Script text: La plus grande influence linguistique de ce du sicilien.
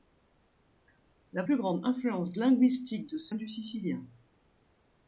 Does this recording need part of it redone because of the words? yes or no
no